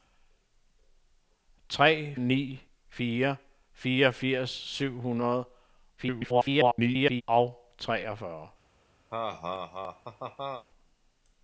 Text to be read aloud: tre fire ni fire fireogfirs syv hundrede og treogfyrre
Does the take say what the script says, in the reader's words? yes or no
no